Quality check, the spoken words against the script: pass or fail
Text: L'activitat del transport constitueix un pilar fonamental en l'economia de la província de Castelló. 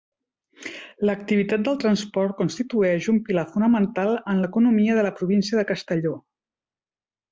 pass